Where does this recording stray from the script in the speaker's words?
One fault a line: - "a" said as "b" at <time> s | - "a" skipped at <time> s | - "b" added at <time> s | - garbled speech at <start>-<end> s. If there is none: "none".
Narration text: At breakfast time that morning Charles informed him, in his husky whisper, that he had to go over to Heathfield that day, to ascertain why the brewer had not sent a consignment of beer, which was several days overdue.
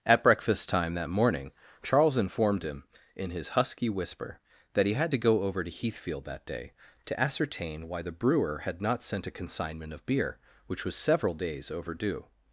none